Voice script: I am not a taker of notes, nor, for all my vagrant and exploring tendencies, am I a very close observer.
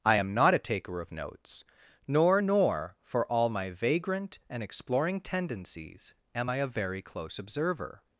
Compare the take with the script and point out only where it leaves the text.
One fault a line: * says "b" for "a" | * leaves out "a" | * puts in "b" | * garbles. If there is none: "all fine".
* puts in "nor"